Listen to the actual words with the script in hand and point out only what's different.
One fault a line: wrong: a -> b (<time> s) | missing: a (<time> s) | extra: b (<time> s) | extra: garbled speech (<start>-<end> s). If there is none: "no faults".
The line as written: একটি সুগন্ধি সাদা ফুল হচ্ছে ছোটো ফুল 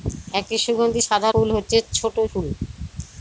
no faults